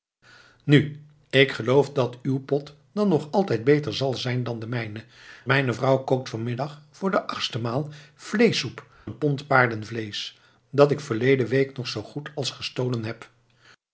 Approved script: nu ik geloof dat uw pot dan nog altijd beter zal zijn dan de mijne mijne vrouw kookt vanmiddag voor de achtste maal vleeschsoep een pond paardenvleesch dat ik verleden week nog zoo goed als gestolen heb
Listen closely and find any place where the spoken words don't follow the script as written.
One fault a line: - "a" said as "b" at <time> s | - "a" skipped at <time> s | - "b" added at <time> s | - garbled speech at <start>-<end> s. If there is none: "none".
none